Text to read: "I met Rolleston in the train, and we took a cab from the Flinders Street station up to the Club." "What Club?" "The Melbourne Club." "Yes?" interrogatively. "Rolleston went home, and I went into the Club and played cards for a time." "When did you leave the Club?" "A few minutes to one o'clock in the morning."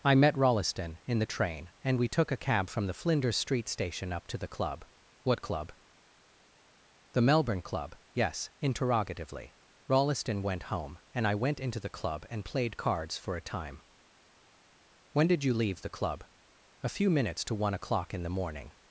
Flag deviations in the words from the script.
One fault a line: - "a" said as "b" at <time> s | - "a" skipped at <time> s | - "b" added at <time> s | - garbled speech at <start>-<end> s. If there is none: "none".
none